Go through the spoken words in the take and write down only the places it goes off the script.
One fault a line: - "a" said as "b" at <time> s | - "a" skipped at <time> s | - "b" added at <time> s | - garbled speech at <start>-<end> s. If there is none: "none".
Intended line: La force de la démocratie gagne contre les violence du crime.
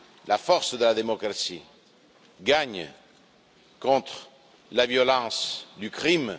- "les" said as "la" at 4.7 s